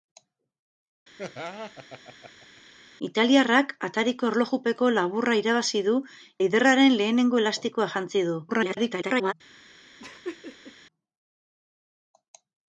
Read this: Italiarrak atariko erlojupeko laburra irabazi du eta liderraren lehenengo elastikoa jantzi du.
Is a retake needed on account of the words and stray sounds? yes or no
yes